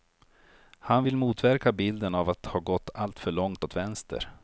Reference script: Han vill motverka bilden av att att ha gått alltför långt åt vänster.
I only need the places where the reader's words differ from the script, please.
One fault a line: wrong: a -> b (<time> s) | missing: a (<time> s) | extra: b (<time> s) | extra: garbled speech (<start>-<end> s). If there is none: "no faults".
missing: att (2.5 s)